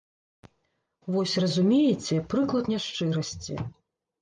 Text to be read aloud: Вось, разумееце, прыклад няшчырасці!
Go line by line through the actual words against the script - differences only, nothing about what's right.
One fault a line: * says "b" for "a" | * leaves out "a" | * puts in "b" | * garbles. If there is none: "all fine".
all fine